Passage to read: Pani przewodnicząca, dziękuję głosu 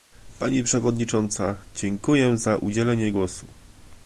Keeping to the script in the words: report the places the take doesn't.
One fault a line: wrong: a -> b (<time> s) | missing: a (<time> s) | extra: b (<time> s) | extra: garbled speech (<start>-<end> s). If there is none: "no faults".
extra: za udzielenie (2.4 s)